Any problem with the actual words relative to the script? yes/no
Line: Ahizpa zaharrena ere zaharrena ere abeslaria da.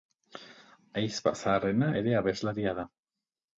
yes